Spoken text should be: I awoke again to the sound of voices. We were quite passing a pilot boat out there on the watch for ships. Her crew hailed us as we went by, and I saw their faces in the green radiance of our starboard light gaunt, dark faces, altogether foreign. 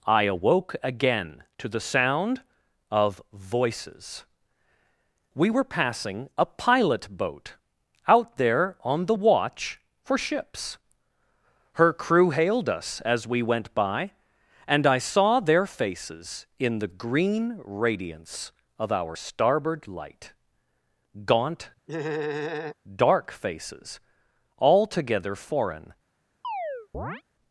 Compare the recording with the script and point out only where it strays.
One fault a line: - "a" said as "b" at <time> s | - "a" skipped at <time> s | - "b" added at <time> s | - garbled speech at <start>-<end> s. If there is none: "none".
- "quite" skipped at 5.6 s